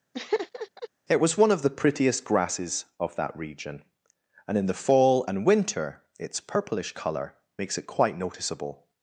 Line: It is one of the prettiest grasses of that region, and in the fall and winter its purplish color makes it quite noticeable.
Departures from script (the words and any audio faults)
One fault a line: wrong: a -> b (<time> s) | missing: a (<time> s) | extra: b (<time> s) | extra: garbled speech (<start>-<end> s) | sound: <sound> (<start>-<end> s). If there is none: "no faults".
sound: laugh (0.1-0.9 s)
wrong: is -> was (1.2 s)